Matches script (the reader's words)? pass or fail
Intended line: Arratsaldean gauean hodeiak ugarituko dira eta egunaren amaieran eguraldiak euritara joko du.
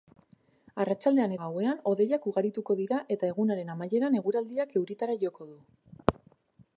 pass